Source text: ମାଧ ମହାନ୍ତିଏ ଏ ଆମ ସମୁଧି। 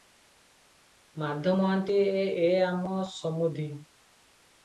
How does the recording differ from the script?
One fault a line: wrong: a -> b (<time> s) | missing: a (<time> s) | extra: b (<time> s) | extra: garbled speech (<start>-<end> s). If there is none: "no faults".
no faults